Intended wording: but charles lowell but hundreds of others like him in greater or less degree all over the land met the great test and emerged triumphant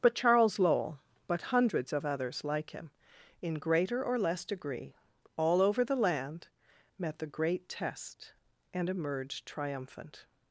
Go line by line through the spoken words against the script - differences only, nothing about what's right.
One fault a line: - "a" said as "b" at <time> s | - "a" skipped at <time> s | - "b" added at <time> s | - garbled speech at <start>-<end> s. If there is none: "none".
none